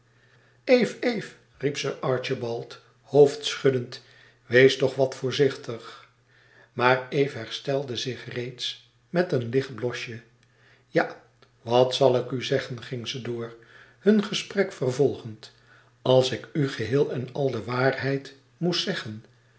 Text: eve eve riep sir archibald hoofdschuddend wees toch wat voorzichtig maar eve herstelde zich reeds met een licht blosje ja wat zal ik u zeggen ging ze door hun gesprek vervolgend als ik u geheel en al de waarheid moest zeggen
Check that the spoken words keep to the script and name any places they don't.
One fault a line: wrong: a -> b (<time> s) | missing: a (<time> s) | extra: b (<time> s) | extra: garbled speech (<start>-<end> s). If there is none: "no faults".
no faults